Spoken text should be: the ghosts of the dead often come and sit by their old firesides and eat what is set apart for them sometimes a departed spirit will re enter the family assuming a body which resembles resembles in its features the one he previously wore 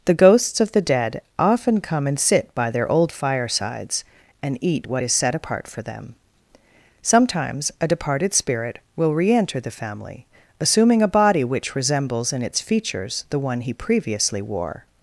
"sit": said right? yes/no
yes